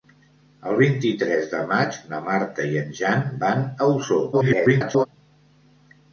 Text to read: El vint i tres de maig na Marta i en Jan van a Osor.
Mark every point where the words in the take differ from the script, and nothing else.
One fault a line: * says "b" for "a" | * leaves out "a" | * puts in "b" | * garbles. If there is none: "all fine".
* garbles